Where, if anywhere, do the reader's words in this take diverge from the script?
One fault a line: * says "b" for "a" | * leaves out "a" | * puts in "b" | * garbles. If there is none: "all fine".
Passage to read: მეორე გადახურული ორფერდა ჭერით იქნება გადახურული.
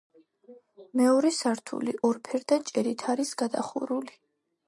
* says "სართული" for "გადახურული"
* says "არის" for "იქნება"